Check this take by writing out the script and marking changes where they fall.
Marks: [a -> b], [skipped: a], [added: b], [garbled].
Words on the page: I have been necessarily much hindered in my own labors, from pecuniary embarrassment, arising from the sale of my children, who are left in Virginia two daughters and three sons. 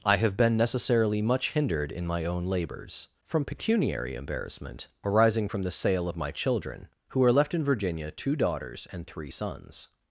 I have been necessarily much hindered in my own labors, from pecuniary embarrassment, arising from the sale of my children, who are left in Virginia two daughters and three sons.